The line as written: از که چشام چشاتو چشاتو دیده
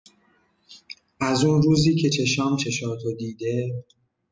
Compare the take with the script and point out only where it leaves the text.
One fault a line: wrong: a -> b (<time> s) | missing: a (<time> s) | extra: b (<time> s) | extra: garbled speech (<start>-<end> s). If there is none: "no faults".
extra: اون روزی (1.4 s)
missing: چشاتو (3.1 s)